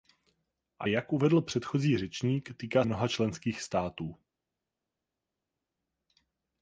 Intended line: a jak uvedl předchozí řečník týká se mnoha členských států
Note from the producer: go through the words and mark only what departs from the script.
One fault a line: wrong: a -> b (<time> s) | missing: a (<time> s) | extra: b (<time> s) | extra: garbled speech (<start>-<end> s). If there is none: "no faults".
missing: se (2.8 s)